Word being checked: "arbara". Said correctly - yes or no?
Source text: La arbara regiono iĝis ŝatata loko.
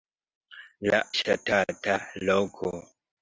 no